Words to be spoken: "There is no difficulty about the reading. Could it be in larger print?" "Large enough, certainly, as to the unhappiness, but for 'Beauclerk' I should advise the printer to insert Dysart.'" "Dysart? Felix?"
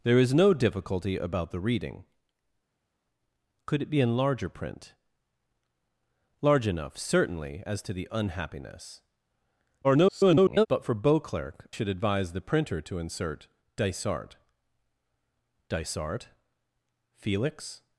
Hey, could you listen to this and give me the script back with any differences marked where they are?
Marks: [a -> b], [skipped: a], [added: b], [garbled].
"There is no difficulty about the reading. Could it be in larger print?" "Large enough, certainly, as to the unhappiness, [garbled] but for 'Beauclerk' [skipped: I] should advise the printer to insert Dysart.'" "Dysart? Felix?"